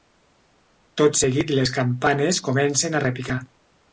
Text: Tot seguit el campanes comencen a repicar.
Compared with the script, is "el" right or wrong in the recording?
wrong